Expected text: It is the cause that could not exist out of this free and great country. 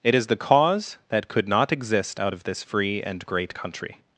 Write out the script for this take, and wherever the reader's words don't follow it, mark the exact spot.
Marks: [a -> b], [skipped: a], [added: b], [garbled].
It is the cause that could not exist out of this free and great country.